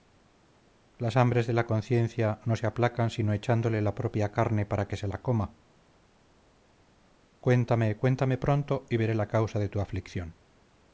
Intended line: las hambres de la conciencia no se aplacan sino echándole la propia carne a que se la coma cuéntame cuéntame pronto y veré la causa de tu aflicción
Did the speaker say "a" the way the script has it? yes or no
no